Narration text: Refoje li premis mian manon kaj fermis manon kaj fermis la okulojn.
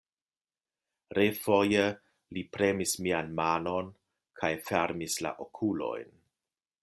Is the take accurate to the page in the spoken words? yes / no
no